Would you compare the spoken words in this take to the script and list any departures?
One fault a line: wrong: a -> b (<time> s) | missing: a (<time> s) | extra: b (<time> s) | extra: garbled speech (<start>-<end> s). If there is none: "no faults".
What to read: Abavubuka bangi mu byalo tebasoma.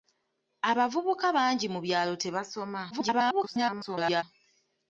extra: garbled speech (2.9-4.2 s)